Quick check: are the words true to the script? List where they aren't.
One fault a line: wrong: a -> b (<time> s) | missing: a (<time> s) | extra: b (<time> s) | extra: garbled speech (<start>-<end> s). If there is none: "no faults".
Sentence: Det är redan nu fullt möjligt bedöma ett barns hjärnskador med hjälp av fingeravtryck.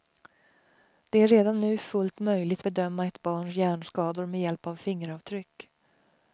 no faults